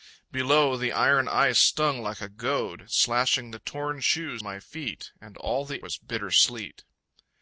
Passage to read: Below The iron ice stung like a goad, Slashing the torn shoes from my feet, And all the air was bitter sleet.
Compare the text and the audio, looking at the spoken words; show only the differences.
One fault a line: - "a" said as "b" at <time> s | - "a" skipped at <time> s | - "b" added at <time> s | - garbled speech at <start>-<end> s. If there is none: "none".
- "from" skipped at 4.4 s
- "air" skipped at 5.8 s